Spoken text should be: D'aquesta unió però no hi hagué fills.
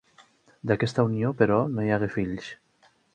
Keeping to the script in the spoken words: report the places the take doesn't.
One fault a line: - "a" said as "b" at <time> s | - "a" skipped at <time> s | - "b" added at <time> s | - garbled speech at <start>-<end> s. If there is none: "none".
none